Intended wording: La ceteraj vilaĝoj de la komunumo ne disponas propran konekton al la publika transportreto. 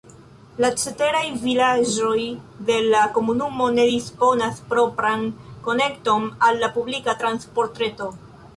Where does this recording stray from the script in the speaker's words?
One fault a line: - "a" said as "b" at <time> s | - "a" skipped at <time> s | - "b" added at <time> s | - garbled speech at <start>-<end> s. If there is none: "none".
none